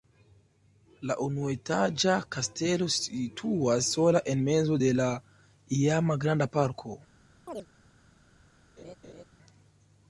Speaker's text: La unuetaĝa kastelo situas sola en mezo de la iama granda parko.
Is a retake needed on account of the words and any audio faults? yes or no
yes